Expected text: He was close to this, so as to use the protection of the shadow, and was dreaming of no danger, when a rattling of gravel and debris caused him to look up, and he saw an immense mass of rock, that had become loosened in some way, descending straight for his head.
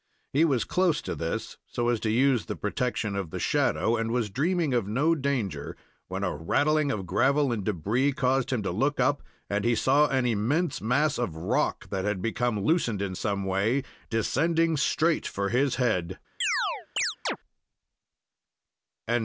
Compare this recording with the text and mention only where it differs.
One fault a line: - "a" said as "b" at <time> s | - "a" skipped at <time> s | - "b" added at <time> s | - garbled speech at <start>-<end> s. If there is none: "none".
none